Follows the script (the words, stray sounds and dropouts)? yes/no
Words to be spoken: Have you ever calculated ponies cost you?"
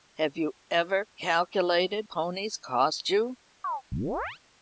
no